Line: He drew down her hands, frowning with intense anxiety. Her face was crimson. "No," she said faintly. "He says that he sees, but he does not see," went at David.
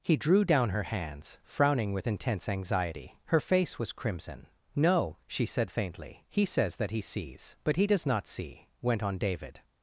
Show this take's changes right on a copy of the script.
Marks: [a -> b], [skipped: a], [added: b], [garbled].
He drew down her hands, frowning with intense anxiety. Her face was crimson. "No," she said faintly. "He says that he sees, but he does not see," went [at -> on] David.